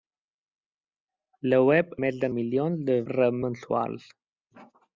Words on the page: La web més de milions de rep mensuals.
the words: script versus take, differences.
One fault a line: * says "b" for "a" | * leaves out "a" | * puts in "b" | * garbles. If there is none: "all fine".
all fine